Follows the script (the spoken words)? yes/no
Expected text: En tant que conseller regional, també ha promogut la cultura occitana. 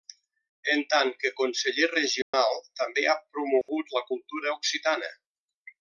yes